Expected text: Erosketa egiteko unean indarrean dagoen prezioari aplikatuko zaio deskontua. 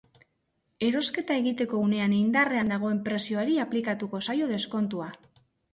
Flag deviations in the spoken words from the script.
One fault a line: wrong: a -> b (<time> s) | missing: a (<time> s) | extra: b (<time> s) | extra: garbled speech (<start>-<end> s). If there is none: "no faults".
no faults